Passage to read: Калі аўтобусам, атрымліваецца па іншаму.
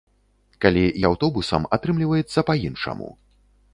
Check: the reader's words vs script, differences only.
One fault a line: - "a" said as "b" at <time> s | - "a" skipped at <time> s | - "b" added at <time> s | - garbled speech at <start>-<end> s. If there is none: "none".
none